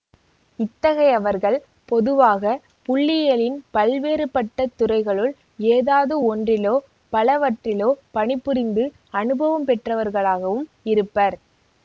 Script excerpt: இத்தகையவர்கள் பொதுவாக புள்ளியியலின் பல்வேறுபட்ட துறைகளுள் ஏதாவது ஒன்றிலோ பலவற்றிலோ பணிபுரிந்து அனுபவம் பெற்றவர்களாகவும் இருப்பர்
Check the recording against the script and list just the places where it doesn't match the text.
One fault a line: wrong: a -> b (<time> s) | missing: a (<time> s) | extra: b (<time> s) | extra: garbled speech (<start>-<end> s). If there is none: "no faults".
no faults